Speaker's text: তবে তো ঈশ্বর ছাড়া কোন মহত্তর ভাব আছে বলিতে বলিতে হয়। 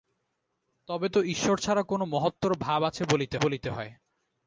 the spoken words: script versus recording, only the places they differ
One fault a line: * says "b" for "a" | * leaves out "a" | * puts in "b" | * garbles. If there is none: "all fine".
all fine